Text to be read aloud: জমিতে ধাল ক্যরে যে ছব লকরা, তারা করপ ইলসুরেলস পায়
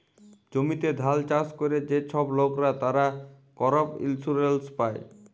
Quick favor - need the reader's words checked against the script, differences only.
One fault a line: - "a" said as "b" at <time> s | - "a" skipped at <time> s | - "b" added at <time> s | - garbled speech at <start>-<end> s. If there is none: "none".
- "চাষ" added at 1.3 s